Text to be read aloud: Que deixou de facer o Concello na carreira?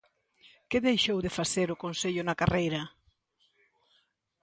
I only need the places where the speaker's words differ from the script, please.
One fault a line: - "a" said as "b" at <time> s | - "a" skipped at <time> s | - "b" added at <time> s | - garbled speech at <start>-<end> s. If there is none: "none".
none